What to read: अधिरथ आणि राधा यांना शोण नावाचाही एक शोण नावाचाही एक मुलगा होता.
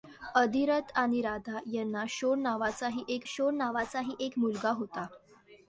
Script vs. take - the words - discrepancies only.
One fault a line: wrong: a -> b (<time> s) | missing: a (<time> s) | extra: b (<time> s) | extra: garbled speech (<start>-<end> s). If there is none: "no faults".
no faults